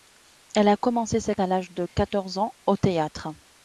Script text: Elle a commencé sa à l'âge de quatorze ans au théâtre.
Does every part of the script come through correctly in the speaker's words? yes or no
yes